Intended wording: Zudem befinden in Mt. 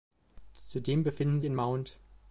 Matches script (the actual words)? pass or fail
pass